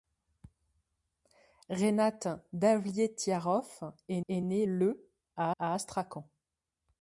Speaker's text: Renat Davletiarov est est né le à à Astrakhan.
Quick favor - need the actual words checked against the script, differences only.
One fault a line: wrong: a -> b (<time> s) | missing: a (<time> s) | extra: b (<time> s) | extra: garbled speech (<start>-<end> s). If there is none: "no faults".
no faults